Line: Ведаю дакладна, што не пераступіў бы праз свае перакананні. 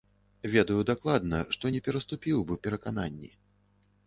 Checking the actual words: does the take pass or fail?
fail